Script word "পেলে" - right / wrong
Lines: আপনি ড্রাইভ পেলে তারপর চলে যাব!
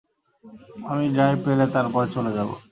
right